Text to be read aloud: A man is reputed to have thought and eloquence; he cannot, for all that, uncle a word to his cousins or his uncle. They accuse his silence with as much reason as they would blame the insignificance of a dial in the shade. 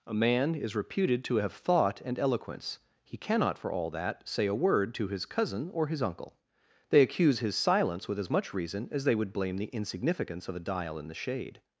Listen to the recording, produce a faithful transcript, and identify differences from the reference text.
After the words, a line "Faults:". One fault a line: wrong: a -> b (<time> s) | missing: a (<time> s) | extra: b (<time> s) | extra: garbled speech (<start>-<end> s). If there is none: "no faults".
A man is reputed to have thought and eloquence; he cannot, for all that, say a word to his cousin or his uncle. They accuse his silence with as much reason as they would blame the insignificance of a dial in the shade.
Faults:
wrong: uncle -> say (4.3 s)
wrong: cousins -> cousin (5.2 s)